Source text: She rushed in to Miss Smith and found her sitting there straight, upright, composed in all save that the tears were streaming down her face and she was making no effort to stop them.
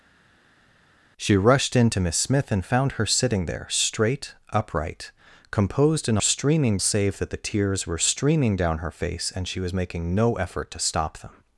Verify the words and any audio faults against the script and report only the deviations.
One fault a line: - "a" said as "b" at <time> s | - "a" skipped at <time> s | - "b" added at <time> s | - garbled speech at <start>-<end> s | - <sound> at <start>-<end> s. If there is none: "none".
- "all" said as "streaming" at 6.2 s